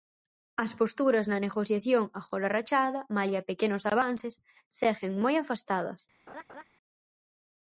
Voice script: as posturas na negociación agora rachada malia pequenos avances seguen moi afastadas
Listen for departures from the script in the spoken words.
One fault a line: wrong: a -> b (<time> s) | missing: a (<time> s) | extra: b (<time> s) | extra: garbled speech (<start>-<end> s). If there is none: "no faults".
no faults